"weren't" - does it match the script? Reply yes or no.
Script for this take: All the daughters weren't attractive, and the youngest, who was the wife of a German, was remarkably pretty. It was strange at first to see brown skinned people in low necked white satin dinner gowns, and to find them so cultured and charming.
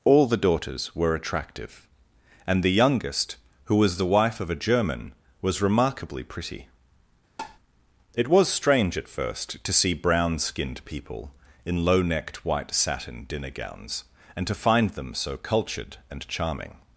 no